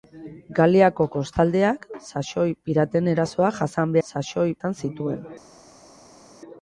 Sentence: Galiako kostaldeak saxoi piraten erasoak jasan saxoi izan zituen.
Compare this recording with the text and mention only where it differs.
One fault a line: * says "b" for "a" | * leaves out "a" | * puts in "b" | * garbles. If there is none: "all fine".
all fine